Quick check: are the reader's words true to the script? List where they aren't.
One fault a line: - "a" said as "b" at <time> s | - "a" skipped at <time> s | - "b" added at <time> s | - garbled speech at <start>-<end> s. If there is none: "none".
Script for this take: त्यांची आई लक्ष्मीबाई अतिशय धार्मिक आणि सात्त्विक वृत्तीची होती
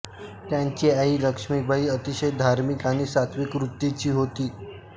none